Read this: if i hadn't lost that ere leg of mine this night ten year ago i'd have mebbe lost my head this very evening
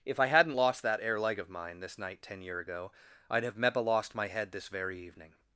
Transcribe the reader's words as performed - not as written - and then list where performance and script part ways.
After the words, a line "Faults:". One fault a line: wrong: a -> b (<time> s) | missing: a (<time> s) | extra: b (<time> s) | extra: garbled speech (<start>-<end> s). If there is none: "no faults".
if i hadn't lost that ere leg of mine this night ten year ago i'd have mebbe lost my head this very evening
Faults:
no faults